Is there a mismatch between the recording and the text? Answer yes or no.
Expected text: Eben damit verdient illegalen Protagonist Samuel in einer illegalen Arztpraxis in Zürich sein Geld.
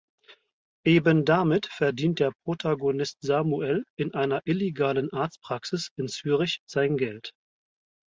yes